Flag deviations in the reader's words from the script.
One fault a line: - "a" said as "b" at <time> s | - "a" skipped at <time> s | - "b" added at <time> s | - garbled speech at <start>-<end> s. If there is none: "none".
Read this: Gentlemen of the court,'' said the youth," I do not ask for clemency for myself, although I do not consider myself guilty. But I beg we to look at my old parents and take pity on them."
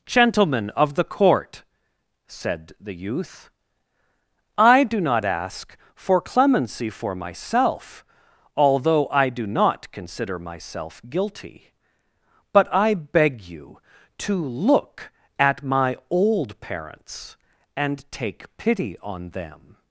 - "we" said as "you" at 13.4 s